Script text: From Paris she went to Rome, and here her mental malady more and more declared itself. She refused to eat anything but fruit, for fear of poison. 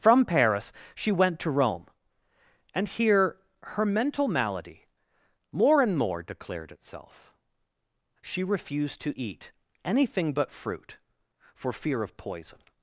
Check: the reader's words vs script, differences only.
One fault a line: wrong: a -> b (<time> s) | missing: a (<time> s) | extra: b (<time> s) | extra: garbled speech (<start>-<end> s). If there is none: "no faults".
no faults